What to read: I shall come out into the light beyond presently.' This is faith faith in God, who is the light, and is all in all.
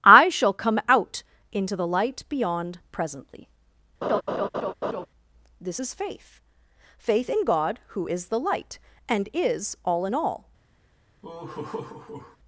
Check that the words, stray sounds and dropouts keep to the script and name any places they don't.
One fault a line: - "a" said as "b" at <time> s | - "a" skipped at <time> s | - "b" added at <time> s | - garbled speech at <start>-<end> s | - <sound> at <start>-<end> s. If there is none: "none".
- laugh at 4.0-5.1 s
- laugh at 11.2-12.4 s